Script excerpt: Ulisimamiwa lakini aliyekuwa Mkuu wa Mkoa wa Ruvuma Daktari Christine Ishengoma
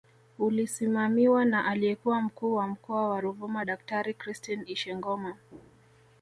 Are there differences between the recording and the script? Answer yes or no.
yes